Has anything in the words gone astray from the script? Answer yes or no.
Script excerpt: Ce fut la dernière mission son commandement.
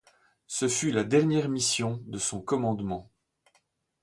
yes